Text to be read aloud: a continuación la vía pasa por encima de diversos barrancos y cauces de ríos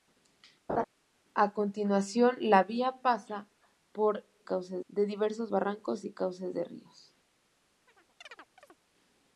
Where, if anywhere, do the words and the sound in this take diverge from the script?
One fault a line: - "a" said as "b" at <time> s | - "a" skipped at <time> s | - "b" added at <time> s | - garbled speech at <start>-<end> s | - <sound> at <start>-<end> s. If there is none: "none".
- laugh at 0.7-0.8 s
- "encima" said as "cauces" at 4.4 s
- chirp at 7.9-8.8 s